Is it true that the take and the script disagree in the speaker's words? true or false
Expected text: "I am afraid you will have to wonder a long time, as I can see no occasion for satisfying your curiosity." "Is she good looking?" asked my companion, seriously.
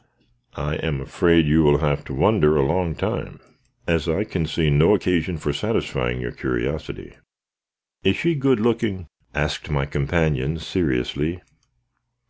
false